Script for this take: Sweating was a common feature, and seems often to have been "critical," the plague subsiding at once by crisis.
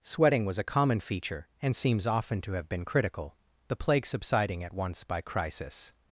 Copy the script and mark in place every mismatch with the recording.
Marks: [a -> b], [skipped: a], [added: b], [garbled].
Sweating was a common feature, and seems often to have been "critical," the plague subsiding at once by crisis.